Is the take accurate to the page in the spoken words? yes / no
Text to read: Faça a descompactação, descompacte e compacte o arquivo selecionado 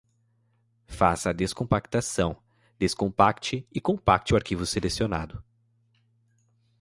yes